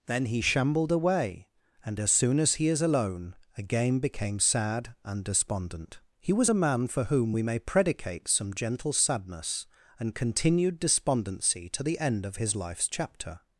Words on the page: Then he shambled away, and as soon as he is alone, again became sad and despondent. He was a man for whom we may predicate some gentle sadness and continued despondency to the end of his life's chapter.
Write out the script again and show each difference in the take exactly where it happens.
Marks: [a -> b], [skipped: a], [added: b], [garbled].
Then he shambled away, and as soon as he is alone, again became sad and despondent. He was a man for whom we may predicate some gentle sadness and continued despondency to the end of his life's chapter.